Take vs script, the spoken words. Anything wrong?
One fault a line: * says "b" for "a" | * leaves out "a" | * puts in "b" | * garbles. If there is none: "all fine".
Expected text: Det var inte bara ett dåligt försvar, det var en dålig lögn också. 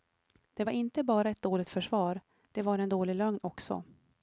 all fine